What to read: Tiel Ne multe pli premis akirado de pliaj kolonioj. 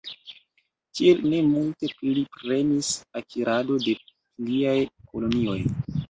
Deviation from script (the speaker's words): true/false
false